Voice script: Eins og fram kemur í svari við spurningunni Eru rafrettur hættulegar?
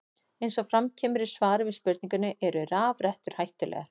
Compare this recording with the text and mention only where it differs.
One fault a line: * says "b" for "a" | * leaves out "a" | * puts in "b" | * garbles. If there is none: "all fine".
all fine